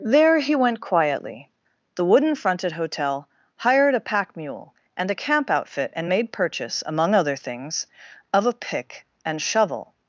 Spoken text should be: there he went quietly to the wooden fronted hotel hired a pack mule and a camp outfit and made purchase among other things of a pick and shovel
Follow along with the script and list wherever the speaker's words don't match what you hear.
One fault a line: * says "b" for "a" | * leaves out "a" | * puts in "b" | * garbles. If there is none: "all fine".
* leaves out "to"